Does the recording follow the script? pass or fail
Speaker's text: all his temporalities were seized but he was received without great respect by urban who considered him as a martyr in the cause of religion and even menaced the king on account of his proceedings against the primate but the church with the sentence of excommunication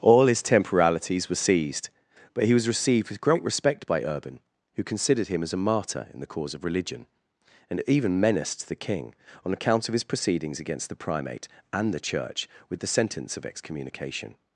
fail